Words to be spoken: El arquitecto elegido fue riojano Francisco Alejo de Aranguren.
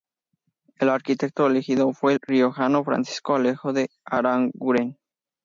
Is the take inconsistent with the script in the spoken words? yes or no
no